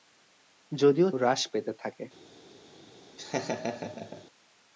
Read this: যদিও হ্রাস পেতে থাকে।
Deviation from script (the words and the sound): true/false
true